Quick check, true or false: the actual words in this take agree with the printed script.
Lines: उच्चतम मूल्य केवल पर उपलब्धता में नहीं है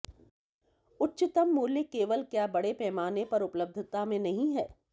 false